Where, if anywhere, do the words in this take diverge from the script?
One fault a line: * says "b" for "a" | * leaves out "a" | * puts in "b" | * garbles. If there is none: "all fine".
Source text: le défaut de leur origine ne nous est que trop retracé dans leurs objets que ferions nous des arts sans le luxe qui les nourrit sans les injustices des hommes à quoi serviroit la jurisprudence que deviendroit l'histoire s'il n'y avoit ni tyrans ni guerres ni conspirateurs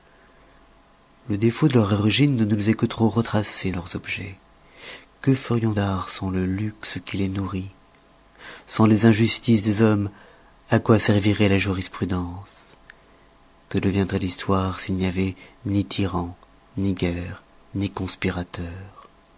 * leaves out "dans"
* leaves out "nous des"